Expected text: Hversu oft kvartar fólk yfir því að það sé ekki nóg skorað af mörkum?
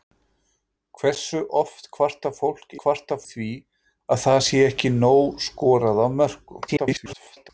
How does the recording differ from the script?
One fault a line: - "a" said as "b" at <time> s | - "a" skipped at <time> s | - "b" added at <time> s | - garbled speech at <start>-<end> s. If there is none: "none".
- "yfir" said as "kvartar" at 2.8 s
- garbled speech at 6.7-7.5 s